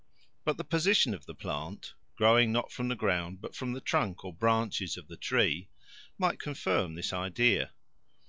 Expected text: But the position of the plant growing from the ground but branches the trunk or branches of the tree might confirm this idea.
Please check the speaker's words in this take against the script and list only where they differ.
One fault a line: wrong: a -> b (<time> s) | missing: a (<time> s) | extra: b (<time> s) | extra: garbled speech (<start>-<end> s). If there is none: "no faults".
extra: not (2.5 s)
wrong: branches -> from (3.5 s)